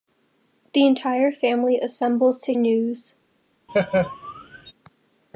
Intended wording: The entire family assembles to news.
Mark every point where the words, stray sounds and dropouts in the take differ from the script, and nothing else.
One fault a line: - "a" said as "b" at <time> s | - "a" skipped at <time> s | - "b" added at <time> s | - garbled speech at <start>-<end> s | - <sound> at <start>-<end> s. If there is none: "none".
- laugh at 3.7-4.7 s